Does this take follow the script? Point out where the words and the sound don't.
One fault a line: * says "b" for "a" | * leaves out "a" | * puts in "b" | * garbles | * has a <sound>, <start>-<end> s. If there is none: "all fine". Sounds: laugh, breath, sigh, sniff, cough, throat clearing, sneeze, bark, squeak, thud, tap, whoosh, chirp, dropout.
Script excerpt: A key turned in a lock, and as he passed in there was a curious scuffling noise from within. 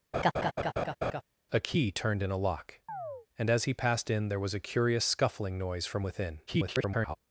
* has a laugh, 0.1-1.2 s
* has a chirp, 2.9-3.3 s
* garbles